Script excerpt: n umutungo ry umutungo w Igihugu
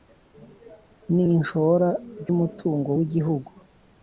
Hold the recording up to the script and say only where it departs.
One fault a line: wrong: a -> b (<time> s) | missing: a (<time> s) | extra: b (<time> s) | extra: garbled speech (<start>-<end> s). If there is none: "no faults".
wrong: umutungo -> ishora (1.3 s)